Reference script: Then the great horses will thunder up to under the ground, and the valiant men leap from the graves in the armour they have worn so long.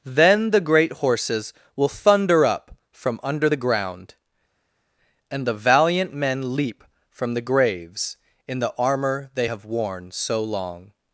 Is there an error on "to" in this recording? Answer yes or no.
yes